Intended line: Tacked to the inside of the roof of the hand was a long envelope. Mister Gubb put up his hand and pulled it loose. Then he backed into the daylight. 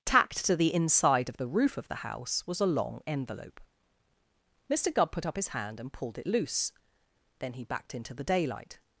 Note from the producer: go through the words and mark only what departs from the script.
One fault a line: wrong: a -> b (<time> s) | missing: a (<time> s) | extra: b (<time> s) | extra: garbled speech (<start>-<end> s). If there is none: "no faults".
wrong: hand -> house (2.0 s)